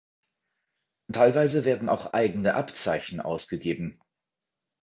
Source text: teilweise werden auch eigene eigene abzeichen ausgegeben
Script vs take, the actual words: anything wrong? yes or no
yes